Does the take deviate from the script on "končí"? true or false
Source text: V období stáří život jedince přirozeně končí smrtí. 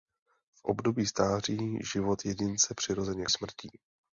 true